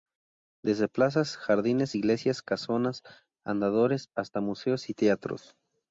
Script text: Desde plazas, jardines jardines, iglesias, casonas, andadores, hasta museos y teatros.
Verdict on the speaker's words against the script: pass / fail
fail